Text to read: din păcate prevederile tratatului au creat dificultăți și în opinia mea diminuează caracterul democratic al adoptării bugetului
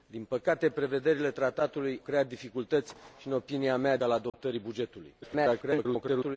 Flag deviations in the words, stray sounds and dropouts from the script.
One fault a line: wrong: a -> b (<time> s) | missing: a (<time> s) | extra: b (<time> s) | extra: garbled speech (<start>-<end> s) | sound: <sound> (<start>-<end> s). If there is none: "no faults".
missing: au (2.0 s)
missing: diminuează caracterul democratic (4.0 s)
sound: dropout (4.3-4.3 s)
extra: garbled speech (5.2-6.4 s)